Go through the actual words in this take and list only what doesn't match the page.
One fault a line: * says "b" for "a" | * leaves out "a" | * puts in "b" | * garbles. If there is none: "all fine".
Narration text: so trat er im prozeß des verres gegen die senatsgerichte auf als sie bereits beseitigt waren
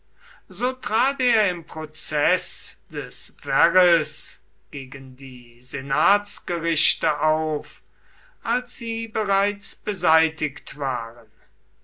all fine